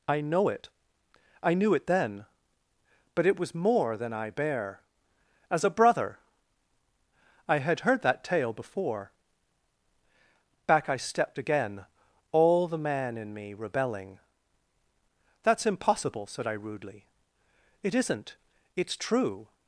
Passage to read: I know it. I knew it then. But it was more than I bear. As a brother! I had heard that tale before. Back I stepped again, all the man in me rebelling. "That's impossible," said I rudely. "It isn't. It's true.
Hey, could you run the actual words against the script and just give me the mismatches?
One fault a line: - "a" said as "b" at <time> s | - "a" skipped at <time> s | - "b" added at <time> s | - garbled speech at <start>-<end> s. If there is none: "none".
none